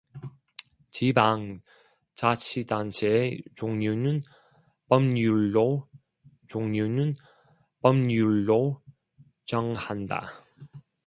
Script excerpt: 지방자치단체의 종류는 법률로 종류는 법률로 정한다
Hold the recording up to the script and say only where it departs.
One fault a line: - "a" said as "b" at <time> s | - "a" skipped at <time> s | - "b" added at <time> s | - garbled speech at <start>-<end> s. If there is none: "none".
none